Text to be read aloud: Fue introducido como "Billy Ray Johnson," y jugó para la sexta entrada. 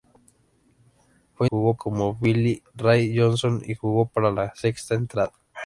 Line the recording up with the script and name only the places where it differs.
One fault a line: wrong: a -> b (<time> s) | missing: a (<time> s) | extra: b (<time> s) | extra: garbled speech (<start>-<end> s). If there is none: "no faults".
wrong: introducido -> jugó (1.4 s)